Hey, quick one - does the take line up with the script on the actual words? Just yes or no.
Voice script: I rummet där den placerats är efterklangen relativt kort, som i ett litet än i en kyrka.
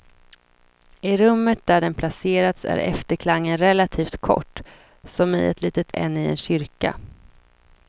yes